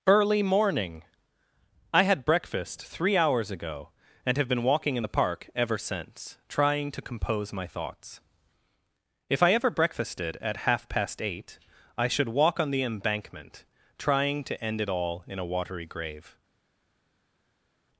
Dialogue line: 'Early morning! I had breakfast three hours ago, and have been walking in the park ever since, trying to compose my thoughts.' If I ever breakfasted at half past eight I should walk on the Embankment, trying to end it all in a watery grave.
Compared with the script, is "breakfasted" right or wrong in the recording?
right